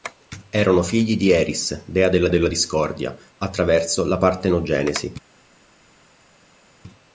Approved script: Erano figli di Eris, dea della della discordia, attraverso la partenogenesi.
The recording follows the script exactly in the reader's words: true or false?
true